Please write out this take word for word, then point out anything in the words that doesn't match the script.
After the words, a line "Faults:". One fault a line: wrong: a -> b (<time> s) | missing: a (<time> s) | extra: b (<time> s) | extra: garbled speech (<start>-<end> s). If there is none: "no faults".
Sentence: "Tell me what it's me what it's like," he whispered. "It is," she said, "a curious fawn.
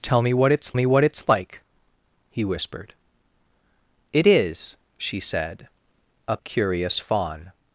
"Tell me what it's me what it's like," he whispered. "It is," she said, "a curious fawn.
Faults:
no faults